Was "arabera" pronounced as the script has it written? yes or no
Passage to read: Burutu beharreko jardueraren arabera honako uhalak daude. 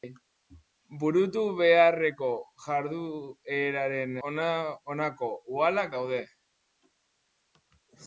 no